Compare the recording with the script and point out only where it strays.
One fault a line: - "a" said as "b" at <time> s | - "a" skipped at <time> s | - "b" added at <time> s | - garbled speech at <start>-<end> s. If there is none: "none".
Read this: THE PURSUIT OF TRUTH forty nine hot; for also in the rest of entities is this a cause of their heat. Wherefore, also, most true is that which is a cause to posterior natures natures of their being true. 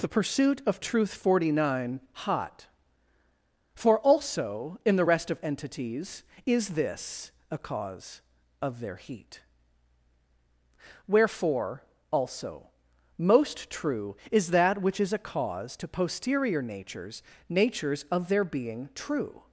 none